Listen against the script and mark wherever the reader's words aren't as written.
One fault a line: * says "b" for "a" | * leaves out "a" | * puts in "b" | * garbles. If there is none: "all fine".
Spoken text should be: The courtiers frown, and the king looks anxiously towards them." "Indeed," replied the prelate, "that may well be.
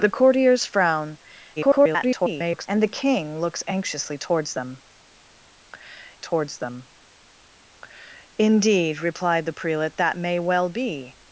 * garbles
* puts in "towards them"